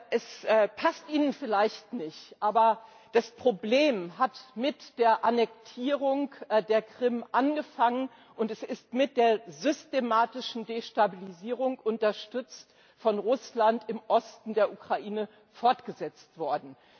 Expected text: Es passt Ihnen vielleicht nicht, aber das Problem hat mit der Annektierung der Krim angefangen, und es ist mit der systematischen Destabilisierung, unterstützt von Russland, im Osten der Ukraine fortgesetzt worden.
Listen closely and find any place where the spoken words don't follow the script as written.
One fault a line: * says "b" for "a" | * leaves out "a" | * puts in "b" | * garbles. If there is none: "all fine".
all fine